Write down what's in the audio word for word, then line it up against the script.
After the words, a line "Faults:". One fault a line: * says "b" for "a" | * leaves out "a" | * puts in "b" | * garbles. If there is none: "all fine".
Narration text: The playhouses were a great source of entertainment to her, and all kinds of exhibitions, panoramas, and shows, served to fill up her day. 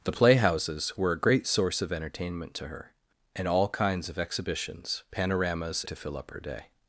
The playhouses were a great source of entertainment to her, and all kinds of exhibitions, panoramas, to fill up her day.
Faults:
* leaves out "and shows served"